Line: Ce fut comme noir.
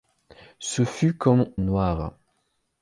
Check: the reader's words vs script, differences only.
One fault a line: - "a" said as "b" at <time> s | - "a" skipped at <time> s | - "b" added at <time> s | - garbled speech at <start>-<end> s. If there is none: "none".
none